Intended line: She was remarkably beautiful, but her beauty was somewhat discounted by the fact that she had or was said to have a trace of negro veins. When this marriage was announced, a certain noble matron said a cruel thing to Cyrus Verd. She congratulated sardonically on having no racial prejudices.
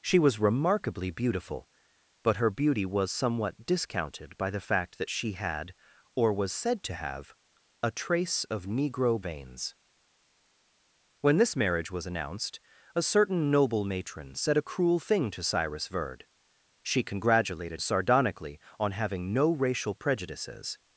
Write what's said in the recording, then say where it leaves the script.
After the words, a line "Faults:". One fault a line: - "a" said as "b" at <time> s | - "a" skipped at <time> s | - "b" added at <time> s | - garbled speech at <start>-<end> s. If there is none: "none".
She was remarkably beautiful, but her beauty was somewhat discounted by the fact that she had or was said to have a trace of negro veins. When this marriage was announced, a certain noble matron said a cruel thing to Cyrus Verd. She congratulated sardonically on having no racial prejudices.
Faults:
none